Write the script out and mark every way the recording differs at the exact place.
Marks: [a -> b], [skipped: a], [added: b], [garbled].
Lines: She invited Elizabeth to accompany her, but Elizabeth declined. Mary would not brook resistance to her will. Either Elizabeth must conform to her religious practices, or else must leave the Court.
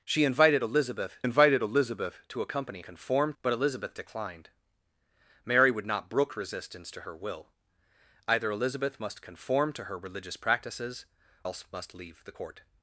She invited Elizabeth [added: invited Elizabeth] to accompany [her, -> conform] but Elizabeth declined. Mary would not brook resistance to her will. Either Elizabeth must conform to her religious practices, [skipped: or] else must leave the Court.